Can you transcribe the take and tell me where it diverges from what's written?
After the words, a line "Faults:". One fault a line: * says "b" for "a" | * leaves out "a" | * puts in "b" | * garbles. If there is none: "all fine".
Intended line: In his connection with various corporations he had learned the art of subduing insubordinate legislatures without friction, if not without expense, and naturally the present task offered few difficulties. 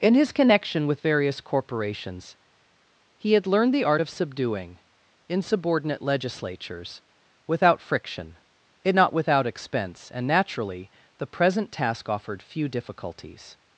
In his connection with various corporations he had learned the art of subduing insubordinate legislatures without friction, it not without expense, and naturally the present task offered few difficulties.
Faults:
* says "it" for "if"